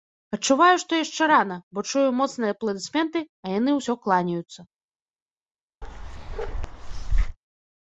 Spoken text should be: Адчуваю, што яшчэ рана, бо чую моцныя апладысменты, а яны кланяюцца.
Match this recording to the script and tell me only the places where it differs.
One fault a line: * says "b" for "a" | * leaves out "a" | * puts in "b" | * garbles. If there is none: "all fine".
* puts in "ўсё"